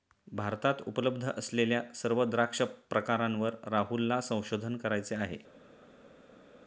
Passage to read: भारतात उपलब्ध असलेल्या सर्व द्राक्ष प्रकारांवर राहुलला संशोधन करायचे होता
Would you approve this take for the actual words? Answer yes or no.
no